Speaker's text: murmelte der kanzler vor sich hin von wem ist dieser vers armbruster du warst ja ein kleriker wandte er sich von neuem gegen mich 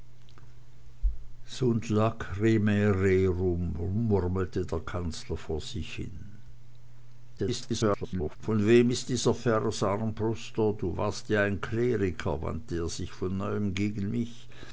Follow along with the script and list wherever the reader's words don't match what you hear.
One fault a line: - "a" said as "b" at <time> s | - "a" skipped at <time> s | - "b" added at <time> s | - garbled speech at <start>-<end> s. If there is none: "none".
- garbled speech at 7.4-8.4 s